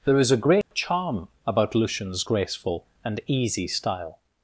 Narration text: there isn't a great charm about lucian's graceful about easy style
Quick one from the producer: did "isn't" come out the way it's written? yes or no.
no